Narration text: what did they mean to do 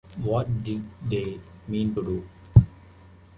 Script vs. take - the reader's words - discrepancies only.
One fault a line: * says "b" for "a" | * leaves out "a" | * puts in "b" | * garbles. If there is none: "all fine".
all fine